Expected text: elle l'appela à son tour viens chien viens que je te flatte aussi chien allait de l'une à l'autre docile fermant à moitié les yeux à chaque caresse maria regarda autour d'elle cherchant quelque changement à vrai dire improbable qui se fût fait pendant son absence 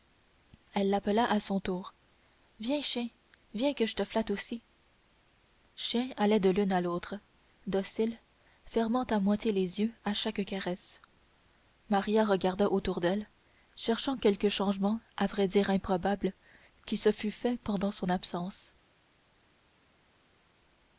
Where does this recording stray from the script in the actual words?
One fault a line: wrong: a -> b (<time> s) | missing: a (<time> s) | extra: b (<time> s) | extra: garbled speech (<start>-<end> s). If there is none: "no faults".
no faults